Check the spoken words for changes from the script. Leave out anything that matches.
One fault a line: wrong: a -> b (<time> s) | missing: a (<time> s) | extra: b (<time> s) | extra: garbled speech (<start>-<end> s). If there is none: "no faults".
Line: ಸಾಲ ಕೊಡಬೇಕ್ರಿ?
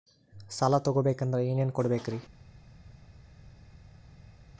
extra: ತೊಗೋಬೇಕಂದ್ರ ಏನೇನ್ (0.8 s)